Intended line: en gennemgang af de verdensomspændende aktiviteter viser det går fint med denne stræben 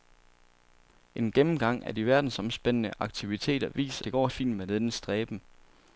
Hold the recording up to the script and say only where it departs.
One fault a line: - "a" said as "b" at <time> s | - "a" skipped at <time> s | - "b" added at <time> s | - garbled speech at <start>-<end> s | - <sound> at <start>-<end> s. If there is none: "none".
none